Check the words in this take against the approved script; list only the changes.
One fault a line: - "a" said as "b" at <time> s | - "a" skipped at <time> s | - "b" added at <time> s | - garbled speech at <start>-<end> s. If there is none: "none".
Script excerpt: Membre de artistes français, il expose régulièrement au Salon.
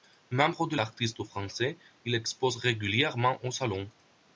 none